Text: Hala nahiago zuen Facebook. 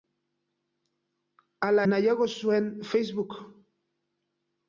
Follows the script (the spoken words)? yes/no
yes